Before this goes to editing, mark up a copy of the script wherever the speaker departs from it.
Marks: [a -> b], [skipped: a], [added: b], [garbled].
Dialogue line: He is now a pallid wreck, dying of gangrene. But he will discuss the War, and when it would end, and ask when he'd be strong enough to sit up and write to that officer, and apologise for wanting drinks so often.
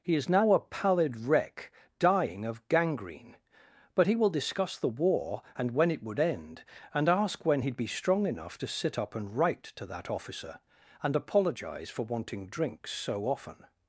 He is now a pallid wreck, dying of gangrene. But he will discuss the War, and when it would end, and ask when he'd be strong enough to sit up and write to that officer, and apologise for wanting drinks so often.